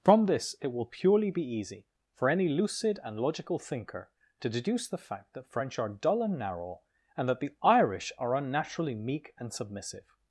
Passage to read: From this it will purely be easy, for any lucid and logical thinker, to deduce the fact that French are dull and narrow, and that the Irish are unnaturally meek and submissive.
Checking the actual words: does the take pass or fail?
pass